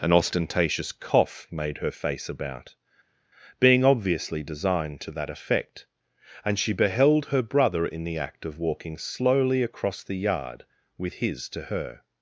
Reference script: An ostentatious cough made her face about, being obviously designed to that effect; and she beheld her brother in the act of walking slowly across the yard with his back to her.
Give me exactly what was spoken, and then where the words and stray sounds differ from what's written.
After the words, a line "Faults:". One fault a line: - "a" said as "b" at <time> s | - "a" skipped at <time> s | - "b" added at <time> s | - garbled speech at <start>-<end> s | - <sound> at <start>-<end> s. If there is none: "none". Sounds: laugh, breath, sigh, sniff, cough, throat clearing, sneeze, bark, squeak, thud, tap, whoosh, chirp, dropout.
An ostentatious cough made her face about, being obviously designed to that effect; and she beheld her brother in the act of walking slowly across the yard with his to her.
Faults:
- "back" skipped at 11.5 s